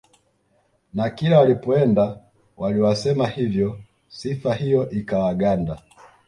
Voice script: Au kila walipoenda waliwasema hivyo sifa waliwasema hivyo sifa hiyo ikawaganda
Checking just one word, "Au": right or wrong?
wrong